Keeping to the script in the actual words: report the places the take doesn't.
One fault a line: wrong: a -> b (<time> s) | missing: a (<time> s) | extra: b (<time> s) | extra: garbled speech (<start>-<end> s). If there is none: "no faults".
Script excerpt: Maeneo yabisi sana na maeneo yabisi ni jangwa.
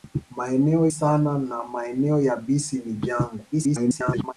missing: yabisi (0.9 s)
extra: garbled speech (3.5-4.3 s)